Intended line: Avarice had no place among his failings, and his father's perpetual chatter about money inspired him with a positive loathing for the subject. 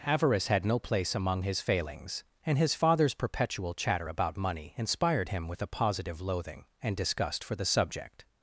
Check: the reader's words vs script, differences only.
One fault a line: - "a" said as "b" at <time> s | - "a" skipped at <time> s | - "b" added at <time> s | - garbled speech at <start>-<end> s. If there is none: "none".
- "and disgust" added at 6.8 s